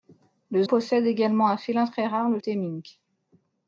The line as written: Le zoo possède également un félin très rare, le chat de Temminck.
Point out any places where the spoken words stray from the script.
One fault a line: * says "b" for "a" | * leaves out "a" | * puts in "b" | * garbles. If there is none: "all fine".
* leaves out "zoo"
* leaves out "chat de"